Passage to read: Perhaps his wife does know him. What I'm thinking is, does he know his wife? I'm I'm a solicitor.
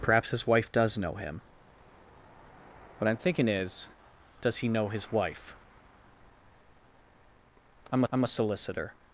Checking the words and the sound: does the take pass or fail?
pass